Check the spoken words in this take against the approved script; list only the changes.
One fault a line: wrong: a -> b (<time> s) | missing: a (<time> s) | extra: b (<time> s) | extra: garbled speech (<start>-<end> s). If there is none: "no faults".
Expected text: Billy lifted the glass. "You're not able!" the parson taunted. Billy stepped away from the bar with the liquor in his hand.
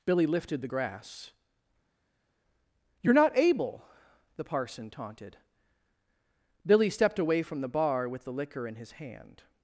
wrong: glass -> grass (0.7 s)